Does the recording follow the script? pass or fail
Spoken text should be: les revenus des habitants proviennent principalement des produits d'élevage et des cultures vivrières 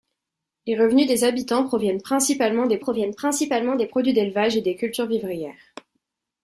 fail